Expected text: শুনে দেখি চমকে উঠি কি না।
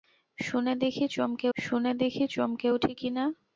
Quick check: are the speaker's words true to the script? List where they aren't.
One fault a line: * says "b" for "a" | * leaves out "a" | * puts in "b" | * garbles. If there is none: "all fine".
* puts in "শুনে দেখি চমকে"